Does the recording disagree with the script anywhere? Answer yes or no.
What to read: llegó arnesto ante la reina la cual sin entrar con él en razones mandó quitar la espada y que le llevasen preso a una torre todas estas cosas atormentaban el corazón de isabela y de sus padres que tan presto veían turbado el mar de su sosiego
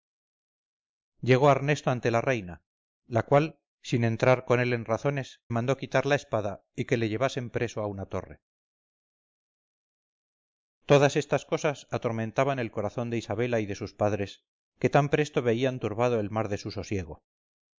no